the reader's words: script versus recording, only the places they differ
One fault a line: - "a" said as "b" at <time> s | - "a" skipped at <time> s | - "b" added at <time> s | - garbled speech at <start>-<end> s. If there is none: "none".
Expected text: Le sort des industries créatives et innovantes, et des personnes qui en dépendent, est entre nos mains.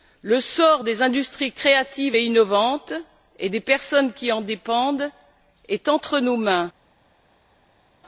none